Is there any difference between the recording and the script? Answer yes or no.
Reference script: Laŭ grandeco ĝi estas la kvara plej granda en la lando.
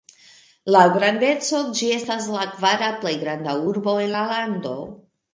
yes